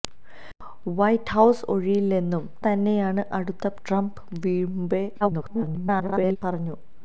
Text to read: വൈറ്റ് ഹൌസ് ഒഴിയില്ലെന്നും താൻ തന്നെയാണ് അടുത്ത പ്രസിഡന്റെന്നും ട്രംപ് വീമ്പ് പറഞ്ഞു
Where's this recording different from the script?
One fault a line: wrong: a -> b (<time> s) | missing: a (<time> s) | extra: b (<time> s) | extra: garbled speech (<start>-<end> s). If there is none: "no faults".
missing: താൻ (2.4 s)
missing: പ്രസിഡന്റെന്നും (3.7 s)
extra: garbled speech (5.2-6.4 s)